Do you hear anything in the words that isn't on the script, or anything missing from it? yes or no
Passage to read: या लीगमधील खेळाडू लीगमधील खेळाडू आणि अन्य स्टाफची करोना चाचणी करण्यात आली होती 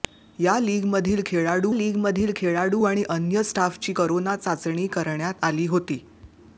no